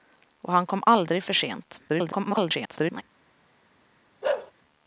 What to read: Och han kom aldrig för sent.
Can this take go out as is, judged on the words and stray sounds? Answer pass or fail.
fail